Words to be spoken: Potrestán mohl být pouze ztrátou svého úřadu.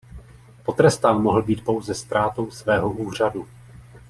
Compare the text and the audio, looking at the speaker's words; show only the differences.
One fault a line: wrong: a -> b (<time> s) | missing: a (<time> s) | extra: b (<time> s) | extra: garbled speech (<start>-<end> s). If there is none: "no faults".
no faults